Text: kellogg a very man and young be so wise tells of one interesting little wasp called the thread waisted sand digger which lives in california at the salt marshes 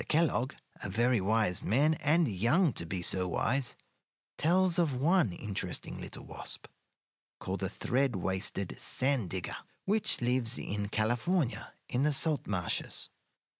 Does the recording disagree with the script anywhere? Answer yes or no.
yes